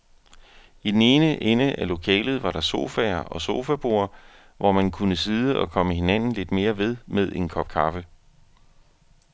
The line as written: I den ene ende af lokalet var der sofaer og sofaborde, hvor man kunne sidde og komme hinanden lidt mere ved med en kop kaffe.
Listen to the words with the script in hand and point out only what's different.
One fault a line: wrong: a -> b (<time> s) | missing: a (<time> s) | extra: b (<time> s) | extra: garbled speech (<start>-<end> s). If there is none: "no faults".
no faults